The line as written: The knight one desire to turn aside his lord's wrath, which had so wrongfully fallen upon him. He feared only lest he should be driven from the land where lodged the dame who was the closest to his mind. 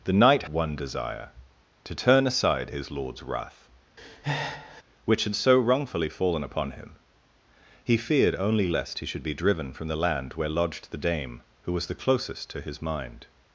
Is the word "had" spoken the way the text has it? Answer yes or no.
yes